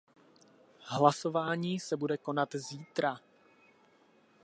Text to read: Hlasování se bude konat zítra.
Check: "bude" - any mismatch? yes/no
no